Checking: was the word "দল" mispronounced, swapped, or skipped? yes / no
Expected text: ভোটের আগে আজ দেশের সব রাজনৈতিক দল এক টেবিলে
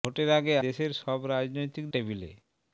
yes